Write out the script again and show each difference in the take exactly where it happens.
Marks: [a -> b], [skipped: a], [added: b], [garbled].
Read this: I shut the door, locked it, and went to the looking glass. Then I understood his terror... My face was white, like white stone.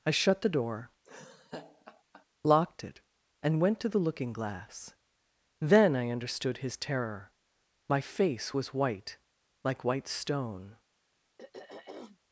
I shut the door, locked it, and went to the looking glass. Then I understood his terror... My face was white, like white stone.